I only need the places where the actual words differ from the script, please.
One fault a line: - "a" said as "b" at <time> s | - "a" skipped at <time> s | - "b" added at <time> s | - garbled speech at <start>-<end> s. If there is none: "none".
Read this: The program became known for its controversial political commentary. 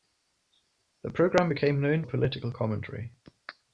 - "for its controversial" skipped at 2.1 s